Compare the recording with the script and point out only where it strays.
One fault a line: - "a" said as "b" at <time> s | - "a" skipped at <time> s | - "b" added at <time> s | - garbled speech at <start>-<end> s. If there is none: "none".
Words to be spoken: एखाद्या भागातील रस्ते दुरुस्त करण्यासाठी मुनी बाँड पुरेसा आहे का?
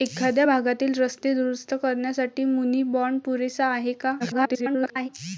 - garbled speech at 4.2-5.1 s